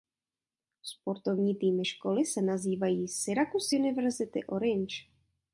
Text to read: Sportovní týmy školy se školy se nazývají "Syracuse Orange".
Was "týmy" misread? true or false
false